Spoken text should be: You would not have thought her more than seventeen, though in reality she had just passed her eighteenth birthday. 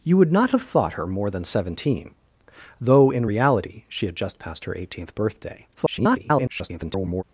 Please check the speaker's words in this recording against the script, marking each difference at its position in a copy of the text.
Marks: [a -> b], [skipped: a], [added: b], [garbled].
You would not have thought her more than seventeen, though in reality she had just passed her eighteenth birthday. [garbled]